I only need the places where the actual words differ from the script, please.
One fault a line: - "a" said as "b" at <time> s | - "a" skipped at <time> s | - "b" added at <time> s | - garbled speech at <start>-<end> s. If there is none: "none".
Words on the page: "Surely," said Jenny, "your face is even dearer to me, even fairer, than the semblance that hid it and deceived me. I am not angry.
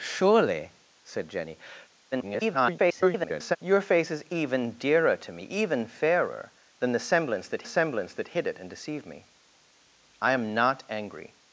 - garbled speech at 2.1-3.6 s
- "semblance that" added at 7.6 s